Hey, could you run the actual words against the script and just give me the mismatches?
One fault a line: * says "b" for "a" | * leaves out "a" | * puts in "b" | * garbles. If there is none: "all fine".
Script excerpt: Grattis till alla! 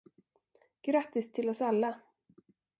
* puts in "oss"